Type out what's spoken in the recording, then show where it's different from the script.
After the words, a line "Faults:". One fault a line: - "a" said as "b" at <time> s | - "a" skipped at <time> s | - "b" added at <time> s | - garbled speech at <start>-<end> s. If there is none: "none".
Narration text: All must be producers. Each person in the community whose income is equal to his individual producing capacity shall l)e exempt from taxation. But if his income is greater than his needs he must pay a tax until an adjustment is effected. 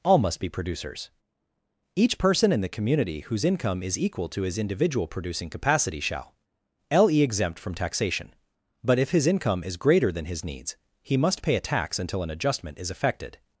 All must be producers. Each person in the community whose income is equal to his individual producing capacity shall l)e exempt from taxation. But if his income is greater than his needs he must pay a tax until an adjustment is effected.
Faults:
none